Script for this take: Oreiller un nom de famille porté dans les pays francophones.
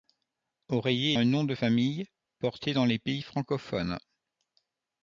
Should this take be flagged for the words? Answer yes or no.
no